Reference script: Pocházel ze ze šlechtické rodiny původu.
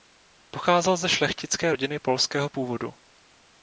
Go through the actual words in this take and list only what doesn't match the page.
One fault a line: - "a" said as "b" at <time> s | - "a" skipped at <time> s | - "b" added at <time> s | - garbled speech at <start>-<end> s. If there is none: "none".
- "ze" skipped at 1.1 s
- "polského" added at 2.0 s